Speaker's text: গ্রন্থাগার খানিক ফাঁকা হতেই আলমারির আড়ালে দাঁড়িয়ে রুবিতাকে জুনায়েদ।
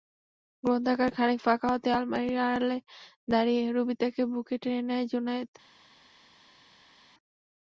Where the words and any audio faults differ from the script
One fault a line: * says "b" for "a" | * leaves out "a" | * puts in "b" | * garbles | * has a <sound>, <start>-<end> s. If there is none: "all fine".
* puts in "বুকে টেনে নেয়"